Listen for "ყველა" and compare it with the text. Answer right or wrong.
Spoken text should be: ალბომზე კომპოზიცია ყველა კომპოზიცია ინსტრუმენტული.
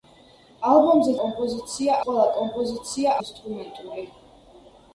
right